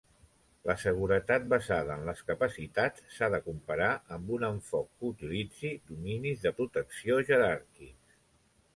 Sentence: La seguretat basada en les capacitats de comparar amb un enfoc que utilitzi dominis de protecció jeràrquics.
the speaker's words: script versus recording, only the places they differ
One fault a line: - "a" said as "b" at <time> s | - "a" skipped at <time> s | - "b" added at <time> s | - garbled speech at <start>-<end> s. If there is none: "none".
- "s"ha" added at 3.1 s